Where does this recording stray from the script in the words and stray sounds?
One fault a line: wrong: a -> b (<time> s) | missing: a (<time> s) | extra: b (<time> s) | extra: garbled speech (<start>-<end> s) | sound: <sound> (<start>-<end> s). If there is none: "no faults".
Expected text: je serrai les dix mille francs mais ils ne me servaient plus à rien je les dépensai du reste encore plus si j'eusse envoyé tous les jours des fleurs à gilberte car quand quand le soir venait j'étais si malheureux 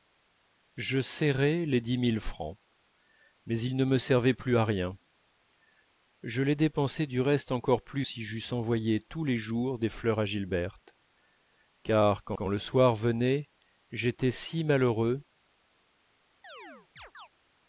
sound: chirp (16.4-17.3 s)